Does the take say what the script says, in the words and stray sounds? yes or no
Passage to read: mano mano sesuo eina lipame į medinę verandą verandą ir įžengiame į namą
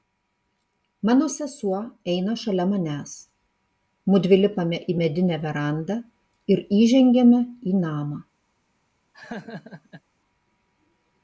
no